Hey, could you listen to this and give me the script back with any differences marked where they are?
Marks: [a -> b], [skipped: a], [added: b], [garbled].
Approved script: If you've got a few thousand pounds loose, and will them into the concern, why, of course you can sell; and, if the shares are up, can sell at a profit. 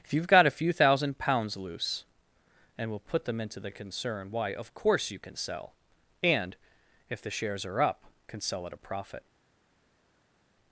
If you've got a few thousand pounds loose, and will [added: put] them into the concern, why, of course you can sell; and, if the shares are up, can sell at a profit.